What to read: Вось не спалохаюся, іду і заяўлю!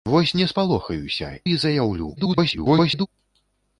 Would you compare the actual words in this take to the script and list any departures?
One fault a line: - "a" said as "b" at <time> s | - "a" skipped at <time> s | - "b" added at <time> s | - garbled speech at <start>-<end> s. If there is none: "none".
- "іду" skipped at 1.3 s
- garbled speech at 2.2-3.1 s